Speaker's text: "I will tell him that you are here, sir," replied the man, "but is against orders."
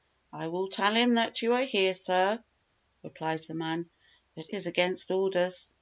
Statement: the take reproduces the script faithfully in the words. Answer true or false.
true